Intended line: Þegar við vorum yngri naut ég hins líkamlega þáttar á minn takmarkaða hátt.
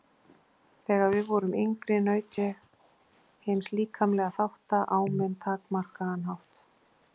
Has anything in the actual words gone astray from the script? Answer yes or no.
no